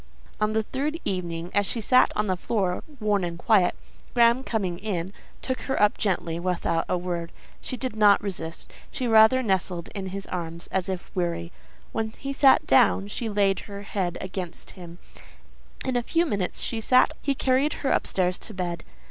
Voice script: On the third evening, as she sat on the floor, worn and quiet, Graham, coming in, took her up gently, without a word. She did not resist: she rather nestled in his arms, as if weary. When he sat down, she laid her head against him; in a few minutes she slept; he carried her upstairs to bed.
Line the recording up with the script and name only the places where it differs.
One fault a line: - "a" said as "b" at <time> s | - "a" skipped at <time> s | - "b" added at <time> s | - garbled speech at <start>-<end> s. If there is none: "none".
- "slept" said as "sat" at 16.8 s